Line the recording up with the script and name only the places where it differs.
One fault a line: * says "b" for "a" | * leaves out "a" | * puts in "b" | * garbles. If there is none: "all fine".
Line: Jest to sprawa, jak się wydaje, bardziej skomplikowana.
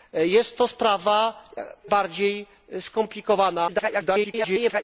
* leaves out "jak się wydaje"
* garbles